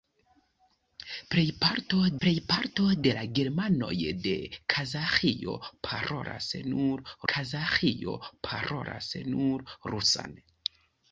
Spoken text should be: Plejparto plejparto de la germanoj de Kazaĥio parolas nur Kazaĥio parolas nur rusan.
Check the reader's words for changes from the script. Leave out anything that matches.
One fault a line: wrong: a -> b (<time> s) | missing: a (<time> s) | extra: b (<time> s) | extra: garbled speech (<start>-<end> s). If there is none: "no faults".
no faults